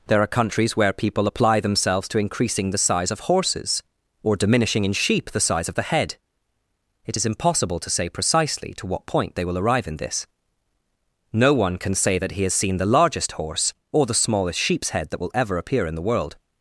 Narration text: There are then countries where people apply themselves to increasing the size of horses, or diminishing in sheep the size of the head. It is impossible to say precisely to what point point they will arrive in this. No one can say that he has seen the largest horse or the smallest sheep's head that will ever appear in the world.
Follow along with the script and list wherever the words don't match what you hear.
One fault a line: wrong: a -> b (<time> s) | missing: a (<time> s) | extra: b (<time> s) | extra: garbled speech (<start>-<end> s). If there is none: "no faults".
missing: then (0.3 s)
missing: point (9.3 s)